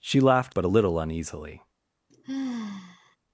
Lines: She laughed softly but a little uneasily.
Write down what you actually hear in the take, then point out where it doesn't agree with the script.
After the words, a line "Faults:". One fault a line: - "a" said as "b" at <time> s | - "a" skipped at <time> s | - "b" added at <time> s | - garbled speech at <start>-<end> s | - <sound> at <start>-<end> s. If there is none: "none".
She laughed but a little uneasily.
Faults:
- "softly" skipped at 0.6 s
- sigh at 2.1-3.2 s